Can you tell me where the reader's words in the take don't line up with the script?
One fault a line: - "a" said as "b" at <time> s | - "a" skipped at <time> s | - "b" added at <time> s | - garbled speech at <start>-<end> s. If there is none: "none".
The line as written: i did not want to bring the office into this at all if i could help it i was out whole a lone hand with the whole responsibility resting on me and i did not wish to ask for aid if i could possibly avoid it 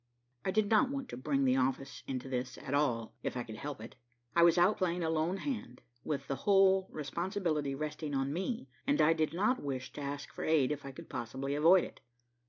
- "whole" said as "playing" at 4.8 s